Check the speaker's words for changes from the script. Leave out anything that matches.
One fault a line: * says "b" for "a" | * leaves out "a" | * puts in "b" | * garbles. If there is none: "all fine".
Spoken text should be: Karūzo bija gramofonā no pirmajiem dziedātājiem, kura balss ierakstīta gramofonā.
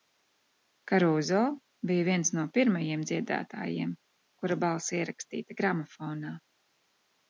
* says "viens" for "gramofonā"